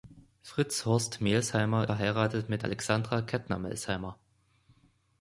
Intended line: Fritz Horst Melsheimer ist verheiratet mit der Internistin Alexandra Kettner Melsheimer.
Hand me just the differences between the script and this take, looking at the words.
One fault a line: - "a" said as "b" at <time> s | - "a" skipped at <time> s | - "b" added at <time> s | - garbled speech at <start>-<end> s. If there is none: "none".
- "ist" skipped at 1.9 s
- "der Internistin" skipped at 2.6 s